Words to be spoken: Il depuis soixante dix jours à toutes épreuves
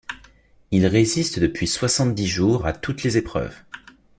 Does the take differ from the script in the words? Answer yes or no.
yes